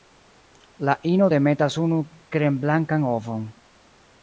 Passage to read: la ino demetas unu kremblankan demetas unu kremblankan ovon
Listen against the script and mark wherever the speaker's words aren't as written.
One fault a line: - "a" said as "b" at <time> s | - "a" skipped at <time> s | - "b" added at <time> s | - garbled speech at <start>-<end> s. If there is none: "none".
- "demetas unu kremblankan" skipped at 3.1 s